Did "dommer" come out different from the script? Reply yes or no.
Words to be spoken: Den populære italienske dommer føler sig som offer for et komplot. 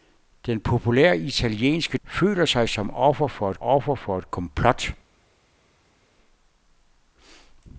yes